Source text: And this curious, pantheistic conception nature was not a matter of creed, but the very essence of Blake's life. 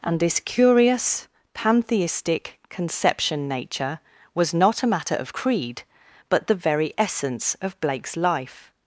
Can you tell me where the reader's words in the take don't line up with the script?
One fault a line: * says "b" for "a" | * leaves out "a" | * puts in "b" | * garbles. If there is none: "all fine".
all fine